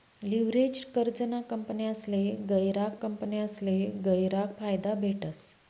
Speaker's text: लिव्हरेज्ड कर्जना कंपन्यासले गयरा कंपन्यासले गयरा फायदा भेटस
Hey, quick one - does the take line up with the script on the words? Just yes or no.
yes